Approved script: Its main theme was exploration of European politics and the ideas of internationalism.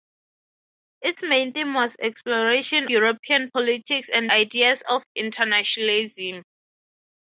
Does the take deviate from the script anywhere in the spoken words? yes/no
yes